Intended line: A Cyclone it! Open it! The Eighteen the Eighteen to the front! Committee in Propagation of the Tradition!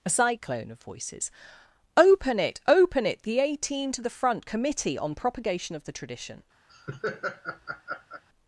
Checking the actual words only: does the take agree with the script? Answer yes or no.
no